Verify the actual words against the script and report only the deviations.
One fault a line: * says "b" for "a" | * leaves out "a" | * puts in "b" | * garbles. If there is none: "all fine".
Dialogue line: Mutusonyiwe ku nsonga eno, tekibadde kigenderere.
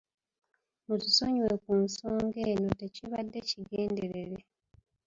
all fine